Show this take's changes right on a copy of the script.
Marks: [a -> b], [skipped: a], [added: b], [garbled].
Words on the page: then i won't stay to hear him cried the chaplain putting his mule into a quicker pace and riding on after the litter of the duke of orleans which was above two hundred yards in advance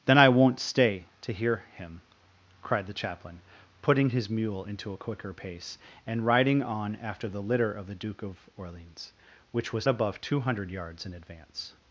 then i won't stay to hear him cried the chaplain putting his mule into a quicker pace and riding on after the litter of the duke of orleans which was above two hundred yards in advance